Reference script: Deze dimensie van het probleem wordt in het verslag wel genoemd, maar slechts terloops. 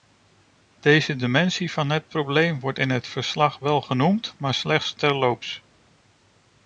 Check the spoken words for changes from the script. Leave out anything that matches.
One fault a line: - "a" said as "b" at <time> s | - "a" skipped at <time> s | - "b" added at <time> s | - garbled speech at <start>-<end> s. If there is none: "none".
none